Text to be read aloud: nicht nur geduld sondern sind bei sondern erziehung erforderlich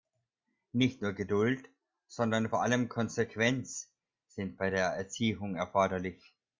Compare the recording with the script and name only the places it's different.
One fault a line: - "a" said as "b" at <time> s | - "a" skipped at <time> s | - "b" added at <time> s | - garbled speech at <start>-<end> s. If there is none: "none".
- "vor allem konsequenz" added at 2.5 s
- "sondern" said as "der" at 4.7 s